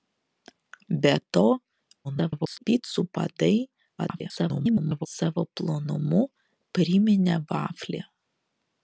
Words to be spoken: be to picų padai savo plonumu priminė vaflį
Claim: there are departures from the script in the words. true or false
true